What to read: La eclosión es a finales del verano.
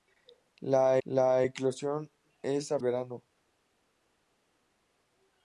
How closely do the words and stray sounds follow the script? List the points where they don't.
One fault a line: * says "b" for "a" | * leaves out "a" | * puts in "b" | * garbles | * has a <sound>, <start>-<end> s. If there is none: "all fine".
* puts in "la"
* leaves out "finales del"